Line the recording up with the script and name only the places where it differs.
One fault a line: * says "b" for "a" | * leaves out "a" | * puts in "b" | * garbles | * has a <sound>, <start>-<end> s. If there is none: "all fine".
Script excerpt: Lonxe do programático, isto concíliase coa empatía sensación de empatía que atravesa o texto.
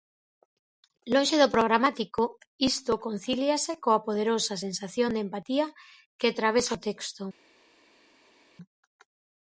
* says "poderosa" for "empatía"